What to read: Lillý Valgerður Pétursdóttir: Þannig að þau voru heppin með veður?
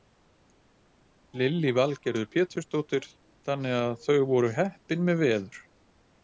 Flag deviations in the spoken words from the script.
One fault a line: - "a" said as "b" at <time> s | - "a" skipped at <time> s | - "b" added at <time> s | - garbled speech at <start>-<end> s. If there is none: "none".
none